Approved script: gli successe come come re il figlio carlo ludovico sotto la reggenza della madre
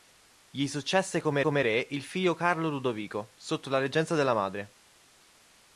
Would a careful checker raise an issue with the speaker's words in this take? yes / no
no